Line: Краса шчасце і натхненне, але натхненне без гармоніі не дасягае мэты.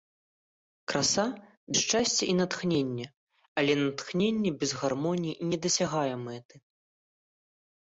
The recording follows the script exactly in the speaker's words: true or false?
true